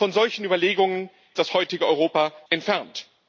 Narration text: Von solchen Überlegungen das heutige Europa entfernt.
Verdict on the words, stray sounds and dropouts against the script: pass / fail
pass